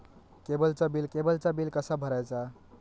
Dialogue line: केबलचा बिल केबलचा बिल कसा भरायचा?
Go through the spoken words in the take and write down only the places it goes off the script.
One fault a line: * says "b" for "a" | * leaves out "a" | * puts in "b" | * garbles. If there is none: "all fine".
all fine